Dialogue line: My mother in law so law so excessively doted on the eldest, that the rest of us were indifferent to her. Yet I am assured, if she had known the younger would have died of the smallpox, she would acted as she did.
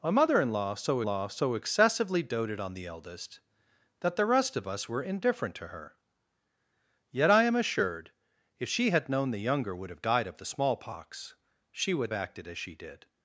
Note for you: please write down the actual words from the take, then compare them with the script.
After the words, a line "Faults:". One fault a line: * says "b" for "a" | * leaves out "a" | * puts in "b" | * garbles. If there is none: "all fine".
My mother in law so law so excessively doted on the eldest, that the rest of us were indifferent to her. Yet I am assured, if she had known the younger would have died of the smallpox, she would acted as she did.
Faults:
all fine